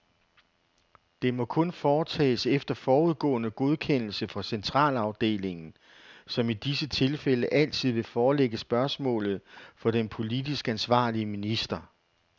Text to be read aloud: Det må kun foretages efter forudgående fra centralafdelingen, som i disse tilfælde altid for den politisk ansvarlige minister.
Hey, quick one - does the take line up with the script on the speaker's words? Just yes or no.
no